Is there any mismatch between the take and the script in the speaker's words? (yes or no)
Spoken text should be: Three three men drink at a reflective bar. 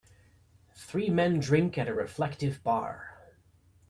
yes